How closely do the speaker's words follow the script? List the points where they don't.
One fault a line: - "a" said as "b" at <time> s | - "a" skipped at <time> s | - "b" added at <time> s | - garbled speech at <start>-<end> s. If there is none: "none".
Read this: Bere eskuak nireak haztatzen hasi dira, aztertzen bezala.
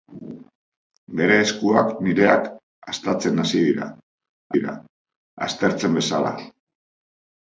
- "dira" added at 4.5 s